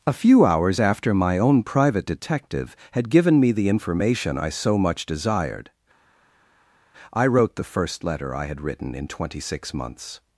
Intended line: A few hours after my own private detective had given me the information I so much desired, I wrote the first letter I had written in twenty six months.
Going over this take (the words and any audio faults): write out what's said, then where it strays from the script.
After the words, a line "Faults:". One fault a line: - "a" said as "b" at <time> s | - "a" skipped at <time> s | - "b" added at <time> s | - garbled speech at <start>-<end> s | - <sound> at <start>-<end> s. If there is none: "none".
A few hours after my own private detective had given me the information I so much desired, I wrote the first letter I had written in twenty six months.
Faults:
none